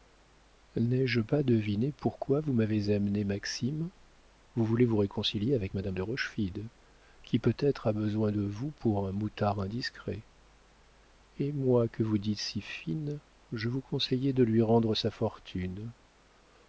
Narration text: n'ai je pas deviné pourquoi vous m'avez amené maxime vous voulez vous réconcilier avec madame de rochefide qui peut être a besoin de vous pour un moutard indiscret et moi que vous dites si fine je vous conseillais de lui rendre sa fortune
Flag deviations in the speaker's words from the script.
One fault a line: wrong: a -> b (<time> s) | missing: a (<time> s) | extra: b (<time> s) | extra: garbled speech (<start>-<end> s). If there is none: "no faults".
no faults